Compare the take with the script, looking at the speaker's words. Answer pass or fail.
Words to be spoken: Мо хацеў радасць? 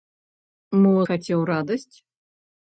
pass